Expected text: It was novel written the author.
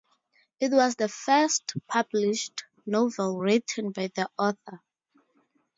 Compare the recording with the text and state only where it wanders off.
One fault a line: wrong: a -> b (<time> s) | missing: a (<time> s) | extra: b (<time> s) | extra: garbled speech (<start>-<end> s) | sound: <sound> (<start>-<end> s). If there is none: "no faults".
extra: the first published (0.9 s)
extra: by (3.9 s)